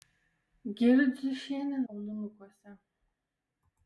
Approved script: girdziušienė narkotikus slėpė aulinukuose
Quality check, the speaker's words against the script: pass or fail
fail